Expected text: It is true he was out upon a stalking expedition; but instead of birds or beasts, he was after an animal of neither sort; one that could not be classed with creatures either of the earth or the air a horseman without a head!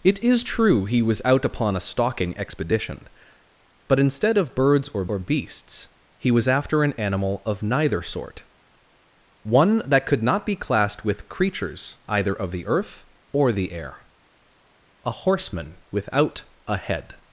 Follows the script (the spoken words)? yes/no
no